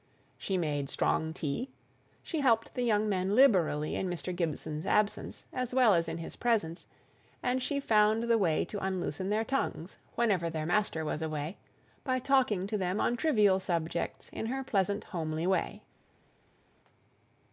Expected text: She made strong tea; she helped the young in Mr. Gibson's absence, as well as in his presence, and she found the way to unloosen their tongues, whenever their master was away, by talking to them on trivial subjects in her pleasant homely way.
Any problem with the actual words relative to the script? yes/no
yes